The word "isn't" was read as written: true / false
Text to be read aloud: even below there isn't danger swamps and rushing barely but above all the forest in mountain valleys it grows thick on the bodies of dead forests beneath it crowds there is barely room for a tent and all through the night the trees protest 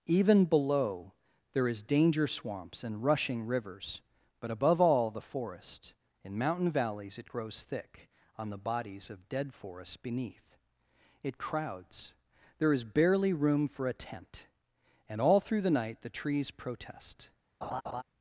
false